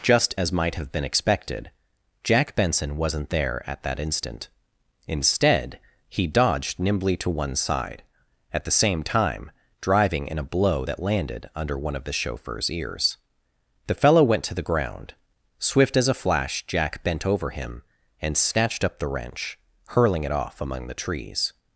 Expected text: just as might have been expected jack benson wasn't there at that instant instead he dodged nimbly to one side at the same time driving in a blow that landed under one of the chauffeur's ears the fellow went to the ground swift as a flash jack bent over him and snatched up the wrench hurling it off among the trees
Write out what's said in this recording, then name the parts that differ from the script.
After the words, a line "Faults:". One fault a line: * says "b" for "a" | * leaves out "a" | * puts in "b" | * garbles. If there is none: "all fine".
just as might have been expected jack benson wasn't there at that instant instead he dodged nimbly to one side at the same time driving in a blow that landed under one of the chauffeur's ears the fellow went to the ground swift as a flash jack bent over him and snatched up the wrench hurling it off among the trees
Faults:
all fine